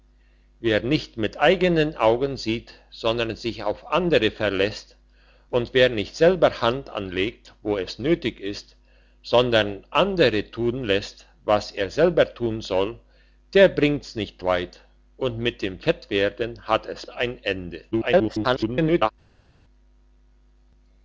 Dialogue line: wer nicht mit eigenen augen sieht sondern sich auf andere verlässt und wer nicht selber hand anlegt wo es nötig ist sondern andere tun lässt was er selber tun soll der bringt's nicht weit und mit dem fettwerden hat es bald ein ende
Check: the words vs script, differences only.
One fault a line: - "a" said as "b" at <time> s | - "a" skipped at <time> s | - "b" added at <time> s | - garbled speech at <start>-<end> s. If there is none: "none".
- "bald" skipped at 17.1 s
- garbled speech at 17.9-19.1 s